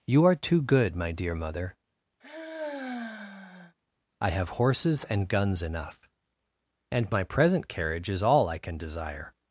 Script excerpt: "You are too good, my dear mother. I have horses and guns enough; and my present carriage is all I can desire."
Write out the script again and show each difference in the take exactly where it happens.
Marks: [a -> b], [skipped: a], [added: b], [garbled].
"You are too good, my dear mother. I have horses and guns enough; and my present carriage is all I can desire."